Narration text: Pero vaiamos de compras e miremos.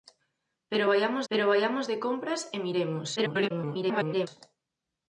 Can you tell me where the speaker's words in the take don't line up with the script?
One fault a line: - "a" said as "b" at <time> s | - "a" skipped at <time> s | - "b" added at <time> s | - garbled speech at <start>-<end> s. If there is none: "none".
- "pero vaiamos" added at 1.3 s
- garbled speech at 3.2-4.3 s